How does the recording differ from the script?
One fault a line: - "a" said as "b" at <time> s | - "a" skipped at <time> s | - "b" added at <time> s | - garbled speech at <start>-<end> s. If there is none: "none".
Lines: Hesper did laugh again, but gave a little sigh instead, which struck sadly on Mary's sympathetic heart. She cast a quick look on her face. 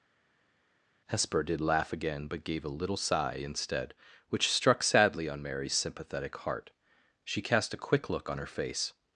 none